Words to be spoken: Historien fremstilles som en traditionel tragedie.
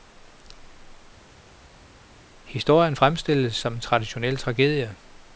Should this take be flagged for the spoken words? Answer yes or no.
no